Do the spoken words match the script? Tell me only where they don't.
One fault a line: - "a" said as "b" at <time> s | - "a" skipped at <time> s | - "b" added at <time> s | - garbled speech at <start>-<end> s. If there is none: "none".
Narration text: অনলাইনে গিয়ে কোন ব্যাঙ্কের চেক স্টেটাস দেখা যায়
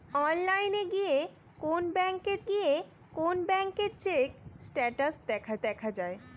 - "গিয়ে কোন ব্যাঙ্কের" added at 2.5 s
- "দেখা" added at 5.6 s